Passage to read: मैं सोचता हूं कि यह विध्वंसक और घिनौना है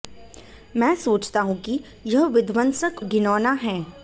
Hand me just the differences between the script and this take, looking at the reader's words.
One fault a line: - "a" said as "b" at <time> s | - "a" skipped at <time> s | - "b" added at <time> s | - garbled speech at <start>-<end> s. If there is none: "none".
- "और" skipped at 3.0 s